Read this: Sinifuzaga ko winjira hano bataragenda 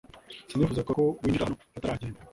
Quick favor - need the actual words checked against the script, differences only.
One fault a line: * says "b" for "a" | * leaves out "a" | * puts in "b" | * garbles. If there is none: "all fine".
all fine